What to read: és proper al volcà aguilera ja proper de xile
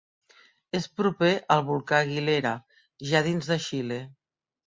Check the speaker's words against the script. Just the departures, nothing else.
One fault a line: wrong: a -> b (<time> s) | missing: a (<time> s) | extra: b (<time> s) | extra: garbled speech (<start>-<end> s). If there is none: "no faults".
wrong: proper -> dins (3.3 s)